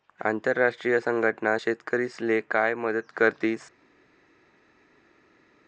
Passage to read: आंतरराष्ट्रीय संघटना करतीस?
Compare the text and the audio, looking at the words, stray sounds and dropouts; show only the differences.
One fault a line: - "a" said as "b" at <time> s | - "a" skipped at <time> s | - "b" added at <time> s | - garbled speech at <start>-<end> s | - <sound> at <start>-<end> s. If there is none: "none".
- "शेतकरीस्ले काय मदत" added at 1.6 s